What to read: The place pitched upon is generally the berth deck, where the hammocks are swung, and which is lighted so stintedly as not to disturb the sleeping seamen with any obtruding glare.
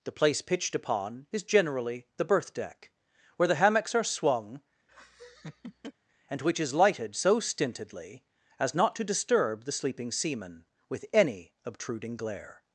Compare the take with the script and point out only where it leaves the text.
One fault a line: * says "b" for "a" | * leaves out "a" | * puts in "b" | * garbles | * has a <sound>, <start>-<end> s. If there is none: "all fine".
* has a laugh, 4.9-5.9 s